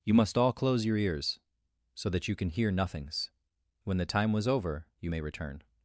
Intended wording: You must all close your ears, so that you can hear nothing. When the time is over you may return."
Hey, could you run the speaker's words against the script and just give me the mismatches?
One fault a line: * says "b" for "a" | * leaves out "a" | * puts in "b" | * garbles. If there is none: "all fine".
* says "nothings" for "nothing"
* says "was" for "is"